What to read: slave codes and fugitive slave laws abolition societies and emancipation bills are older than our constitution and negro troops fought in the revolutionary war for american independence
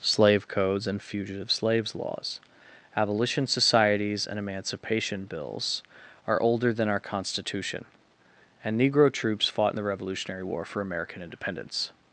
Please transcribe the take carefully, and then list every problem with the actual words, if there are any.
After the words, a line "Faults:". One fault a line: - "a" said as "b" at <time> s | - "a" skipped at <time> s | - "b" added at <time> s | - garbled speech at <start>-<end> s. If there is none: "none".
slave codes and fugitive slaves laws abolition societies and emancipation bills are older than our constitution and negro troops fought in the revolutionary war for american independence
Faults:
- "slave" said as "slaves" at 1.5 s